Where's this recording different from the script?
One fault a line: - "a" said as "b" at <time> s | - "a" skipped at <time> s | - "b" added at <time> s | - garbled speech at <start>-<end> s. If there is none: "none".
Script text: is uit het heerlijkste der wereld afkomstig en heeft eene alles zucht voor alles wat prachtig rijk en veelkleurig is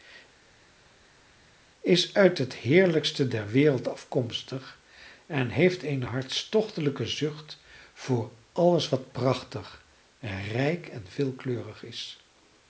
- "alles" said as "hartstochtelijke" at 6.0 s